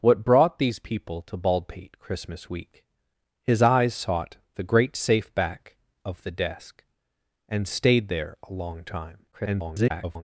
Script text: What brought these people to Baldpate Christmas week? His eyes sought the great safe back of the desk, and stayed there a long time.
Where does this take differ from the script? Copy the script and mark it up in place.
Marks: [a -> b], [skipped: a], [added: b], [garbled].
What brought these people to Baldpate Christmas week? His eyes sought the great safe back of the desk, and stayed there a long time. [garbled]